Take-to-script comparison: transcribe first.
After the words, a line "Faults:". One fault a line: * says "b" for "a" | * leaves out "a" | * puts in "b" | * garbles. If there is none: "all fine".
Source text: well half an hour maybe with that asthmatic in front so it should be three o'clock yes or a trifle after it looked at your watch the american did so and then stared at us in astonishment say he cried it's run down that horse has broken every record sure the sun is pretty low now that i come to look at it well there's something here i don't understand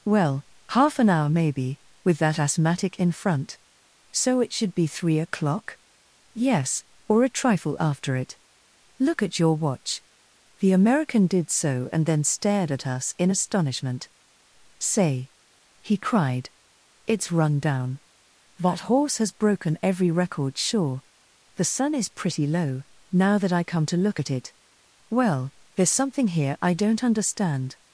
well half an hour maybe with that asthmatic in front so it should be three o'clock yes or a trifle after it look at your watch the american did so and then stared at us in astonishment say he cried it's run down that horse has broken every record sure the sun is pretty low now that i come to look at it well there's something here i don't understand
Faults:
* says "look" for "looked"